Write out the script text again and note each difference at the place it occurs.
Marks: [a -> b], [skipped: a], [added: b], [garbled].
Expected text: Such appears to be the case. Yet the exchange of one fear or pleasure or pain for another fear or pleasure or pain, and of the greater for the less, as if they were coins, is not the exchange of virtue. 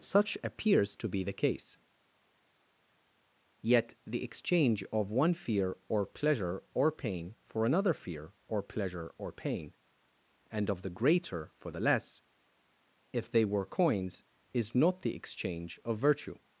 Such appears to be the case. Yet the exchange of one fear or pleasure or pain for another fear or pleasure or pain, and of the greater for the less, [skipped: as] if they were coins, is not the exchange of virtue.